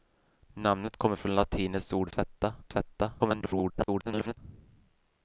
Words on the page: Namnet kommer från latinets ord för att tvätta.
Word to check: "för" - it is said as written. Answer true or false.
false